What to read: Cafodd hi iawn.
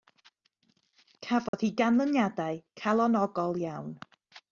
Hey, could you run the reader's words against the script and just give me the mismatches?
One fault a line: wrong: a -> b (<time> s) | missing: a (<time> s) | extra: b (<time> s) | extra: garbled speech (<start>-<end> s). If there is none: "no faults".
extra: ganlyniadau calonogol (1.8 s)